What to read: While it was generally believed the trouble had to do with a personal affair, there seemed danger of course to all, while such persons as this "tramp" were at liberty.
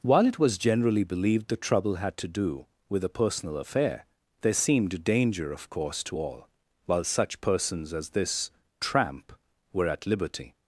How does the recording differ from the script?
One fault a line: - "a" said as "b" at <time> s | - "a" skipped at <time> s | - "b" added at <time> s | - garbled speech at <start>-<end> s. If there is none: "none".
none